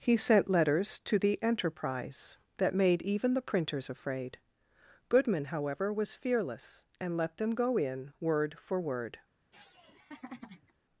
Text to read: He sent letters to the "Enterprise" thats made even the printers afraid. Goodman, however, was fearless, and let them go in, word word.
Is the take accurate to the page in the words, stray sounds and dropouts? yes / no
no